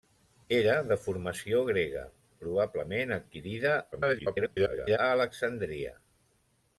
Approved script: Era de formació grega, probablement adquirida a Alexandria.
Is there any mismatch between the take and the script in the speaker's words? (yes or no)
yes